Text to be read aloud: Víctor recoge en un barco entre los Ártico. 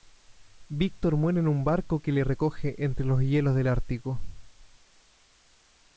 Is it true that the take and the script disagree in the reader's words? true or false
true